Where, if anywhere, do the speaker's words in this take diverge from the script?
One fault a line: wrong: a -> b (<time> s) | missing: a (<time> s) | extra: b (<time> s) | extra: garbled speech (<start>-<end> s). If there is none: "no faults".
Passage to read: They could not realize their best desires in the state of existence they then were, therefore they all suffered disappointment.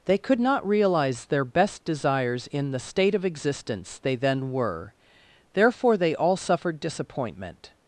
no faults